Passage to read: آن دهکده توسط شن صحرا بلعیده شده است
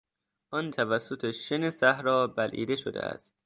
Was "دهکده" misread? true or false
true